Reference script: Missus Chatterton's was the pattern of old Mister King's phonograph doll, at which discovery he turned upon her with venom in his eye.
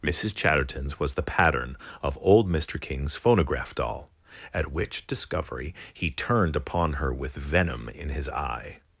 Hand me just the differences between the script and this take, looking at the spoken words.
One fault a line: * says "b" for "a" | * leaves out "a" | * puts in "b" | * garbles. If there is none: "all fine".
all fine